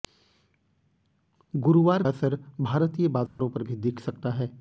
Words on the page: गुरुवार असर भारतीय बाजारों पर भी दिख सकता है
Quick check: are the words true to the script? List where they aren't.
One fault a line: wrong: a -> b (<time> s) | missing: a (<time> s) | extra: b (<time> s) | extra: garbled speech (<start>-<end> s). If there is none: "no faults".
no faults